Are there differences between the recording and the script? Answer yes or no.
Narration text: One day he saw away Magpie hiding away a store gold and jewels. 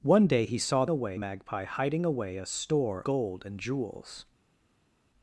no